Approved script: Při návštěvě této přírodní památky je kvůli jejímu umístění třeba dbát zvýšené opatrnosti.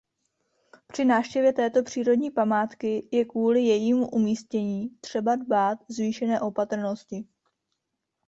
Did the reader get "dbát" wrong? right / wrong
right